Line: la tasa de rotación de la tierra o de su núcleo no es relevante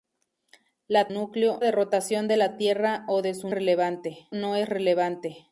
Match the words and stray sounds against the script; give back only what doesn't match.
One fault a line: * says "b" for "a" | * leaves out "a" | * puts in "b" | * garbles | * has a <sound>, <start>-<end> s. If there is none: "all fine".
* says "núcleo" for "tasa"
* says "relevante" for "núcleo"